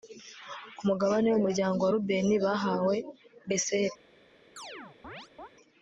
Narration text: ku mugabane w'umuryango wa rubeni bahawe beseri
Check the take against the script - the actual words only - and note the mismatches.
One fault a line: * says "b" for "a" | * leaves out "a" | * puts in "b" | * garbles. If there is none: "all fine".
all fine